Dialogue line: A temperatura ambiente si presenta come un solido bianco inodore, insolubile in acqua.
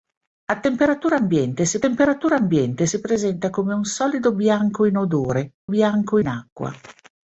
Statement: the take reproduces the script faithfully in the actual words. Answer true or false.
false